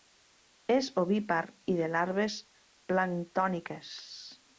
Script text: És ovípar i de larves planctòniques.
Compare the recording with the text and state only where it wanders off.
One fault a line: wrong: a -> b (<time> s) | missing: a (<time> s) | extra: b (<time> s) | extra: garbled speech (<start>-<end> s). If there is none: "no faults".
no faults